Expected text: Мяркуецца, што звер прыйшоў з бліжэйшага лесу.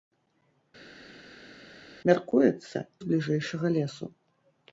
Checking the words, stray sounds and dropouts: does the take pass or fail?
fail